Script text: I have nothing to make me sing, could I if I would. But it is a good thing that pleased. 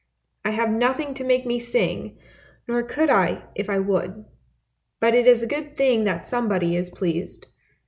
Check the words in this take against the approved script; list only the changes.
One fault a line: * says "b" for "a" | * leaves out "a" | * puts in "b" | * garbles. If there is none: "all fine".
* puts in "nor"
* puts in "somebody is"